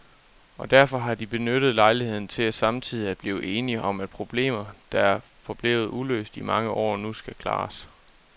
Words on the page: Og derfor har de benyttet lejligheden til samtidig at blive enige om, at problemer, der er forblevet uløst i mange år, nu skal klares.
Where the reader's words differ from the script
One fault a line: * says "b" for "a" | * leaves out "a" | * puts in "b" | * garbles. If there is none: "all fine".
all fine